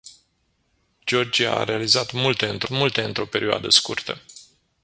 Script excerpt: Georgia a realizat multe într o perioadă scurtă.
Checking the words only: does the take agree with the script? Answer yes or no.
no